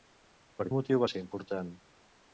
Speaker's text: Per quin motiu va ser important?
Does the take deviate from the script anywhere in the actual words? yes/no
yes